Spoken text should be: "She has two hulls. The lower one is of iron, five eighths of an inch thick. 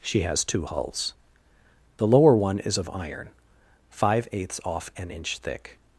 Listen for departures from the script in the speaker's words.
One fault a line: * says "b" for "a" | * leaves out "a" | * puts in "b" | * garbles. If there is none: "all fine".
* says "off" for "of"